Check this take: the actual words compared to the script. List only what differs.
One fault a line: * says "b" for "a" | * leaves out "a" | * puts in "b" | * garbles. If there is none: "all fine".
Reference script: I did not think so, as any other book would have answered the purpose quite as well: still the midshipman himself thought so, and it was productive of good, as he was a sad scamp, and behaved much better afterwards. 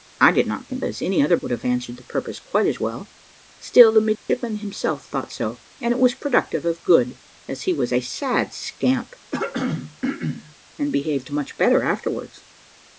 * leaves out "so"
* leaves out "book"